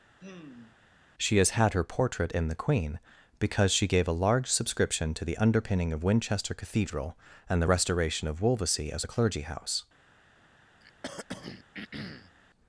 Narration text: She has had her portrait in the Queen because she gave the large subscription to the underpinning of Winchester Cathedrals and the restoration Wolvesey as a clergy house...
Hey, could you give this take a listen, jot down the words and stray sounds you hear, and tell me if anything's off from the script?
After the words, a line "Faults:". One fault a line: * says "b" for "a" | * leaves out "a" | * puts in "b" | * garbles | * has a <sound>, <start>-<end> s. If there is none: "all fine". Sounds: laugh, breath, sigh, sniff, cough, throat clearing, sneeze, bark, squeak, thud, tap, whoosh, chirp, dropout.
She has had her portrait in the Queen because she gave a large subscription to the underpinning of Winchester Cathedral and the restoration of Wolvesey as a clergy house...
Faults:
* has a sigh, 0.2-0.8 s
* says "a" for "the"
* says "Cathedral" for "Cathedrals"
* puts in "of"
* has a throat clearing, 10.8-12.4 s